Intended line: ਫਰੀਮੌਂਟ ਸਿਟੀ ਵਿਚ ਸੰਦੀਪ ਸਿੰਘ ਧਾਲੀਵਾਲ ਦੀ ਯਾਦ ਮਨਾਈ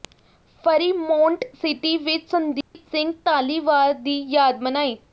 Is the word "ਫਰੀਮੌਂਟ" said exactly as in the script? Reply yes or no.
yes